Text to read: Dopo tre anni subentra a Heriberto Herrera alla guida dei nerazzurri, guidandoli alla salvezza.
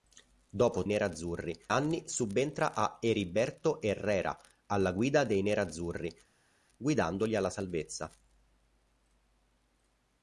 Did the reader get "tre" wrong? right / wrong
wrong